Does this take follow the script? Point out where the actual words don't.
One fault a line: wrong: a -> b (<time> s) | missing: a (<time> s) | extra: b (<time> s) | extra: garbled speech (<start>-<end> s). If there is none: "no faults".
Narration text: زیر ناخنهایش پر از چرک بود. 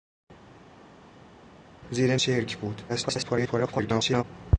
missing: ناخنهایش پر از (2.2 s)
extra: garbled speech (2.9-4.2 s)